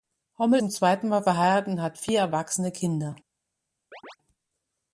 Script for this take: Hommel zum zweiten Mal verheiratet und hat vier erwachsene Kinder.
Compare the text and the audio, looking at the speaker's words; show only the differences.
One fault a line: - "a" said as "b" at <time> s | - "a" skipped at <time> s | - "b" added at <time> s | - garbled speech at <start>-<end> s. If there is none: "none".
none